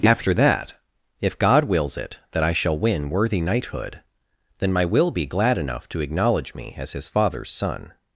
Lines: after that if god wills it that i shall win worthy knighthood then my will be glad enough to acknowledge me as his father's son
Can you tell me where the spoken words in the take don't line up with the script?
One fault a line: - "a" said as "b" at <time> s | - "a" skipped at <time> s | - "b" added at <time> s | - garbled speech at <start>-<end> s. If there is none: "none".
none